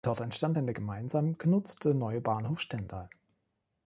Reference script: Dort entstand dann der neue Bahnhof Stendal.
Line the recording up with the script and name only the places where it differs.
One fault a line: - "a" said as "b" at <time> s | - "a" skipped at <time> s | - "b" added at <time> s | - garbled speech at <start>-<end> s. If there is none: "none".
- "gemeinsam genutzte" added at 0.7 s